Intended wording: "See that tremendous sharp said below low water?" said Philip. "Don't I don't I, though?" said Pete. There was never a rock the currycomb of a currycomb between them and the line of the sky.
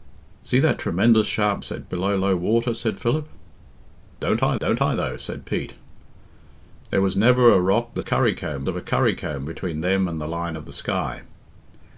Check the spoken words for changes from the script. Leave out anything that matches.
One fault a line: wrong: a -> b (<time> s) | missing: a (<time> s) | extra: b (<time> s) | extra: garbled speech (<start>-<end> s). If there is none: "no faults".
no faults